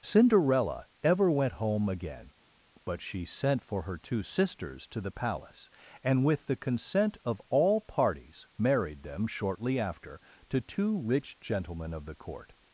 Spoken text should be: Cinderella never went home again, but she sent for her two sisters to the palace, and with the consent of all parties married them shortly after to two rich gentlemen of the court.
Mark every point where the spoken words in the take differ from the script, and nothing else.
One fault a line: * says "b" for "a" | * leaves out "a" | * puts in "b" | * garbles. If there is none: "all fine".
* says "ever" for "never"